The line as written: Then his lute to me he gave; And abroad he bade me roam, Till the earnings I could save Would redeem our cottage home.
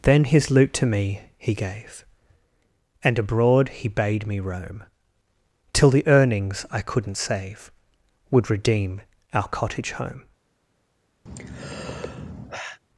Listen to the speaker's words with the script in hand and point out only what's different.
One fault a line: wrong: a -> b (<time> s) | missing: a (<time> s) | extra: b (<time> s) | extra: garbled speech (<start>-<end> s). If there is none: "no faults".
wrong: could -> couldn't (6.8 s)